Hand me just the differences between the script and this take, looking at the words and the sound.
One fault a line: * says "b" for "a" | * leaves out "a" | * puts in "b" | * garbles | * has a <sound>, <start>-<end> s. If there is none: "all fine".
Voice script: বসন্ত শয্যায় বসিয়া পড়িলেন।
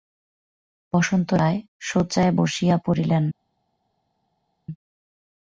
* puts in "রায়"